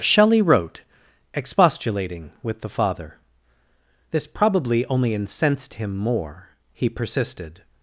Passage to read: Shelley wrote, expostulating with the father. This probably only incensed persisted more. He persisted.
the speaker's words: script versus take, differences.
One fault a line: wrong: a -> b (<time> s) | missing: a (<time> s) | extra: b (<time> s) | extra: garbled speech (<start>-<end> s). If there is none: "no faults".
wrong: persisted -> him (5.7 s)